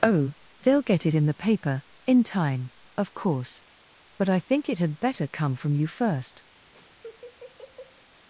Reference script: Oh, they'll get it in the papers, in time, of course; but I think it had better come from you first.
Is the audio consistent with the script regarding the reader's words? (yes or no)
no